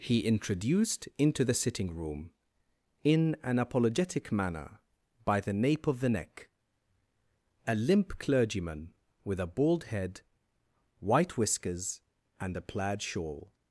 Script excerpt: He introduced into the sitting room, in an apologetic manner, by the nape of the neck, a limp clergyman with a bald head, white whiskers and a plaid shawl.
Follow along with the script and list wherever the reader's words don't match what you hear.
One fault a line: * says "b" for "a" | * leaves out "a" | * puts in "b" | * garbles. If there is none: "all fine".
all fine